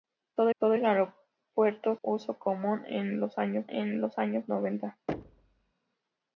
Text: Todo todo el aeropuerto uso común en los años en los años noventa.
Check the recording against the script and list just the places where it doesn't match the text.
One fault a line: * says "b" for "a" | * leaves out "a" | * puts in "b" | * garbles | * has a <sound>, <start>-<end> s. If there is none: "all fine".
* has a thud, 5.1-5.7 s